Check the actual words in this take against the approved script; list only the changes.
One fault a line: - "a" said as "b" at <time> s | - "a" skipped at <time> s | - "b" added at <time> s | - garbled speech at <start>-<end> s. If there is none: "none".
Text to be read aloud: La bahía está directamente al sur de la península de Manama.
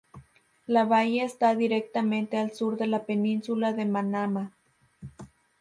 none